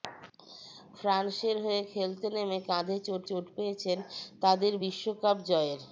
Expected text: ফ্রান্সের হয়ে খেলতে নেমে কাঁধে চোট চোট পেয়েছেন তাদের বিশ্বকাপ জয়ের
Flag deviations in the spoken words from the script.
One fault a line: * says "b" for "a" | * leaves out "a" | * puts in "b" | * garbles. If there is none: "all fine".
all fine